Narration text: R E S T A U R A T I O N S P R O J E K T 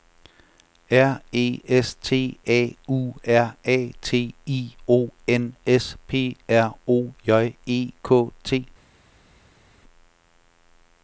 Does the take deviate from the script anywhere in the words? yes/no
no